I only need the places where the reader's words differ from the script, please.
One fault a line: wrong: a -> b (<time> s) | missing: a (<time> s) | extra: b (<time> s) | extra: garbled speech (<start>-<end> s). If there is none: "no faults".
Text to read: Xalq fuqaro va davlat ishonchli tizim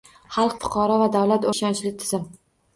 no faults